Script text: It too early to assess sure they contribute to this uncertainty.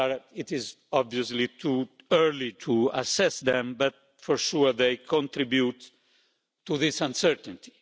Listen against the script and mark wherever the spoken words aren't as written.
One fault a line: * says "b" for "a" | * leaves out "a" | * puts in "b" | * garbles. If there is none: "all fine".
* puts in "is obviously"
* puts in "them but for"